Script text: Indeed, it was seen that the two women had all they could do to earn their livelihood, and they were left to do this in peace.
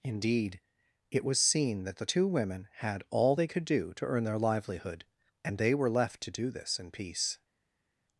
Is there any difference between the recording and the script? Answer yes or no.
no